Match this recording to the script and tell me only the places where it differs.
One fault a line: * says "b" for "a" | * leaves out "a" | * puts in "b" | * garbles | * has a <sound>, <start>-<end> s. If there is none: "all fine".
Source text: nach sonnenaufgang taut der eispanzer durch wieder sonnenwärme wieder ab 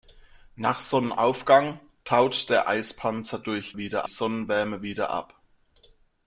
all fine